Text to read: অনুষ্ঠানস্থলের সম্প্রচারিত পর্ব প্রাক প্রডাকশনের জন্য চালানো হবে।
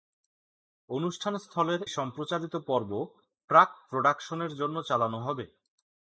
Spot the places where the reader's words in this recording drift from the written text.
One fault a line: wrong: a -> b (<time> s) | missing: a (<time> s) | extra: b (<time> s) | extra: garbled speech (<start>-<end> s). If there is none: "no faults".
no faults